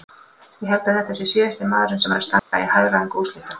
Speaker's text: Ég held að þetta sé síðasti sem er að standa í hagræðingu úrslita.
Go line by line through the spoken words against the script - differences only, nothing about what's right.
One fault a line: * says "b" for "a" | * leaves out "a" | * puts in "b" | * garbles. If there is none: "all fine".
* puts in "maðurinn"